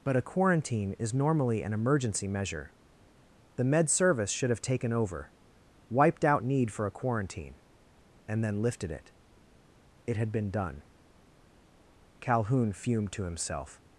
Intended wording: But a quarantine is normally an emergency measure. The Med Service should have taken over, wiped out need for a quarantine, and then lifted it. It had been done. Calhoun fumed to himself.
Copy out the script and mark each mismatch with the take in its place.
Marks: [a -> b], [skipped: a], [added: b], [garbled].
But a quarantine is normally an emergency measure. The Med Service should have taken over, wiped out need for a quarantine, and then lifted it. It had been done. Calhoun fumed to himself.